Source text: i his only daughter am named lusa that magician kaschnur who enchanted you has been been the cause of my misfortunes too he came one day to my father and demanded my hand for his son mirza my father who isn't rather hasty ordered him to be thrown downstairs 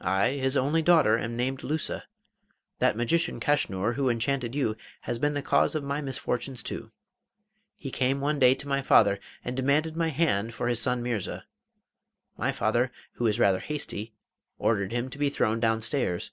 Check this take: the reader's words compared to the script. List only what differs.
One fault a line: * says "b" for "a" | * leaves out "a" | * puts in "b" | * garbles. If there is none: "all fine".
* leaves out "been"
* says "is" for "isn't"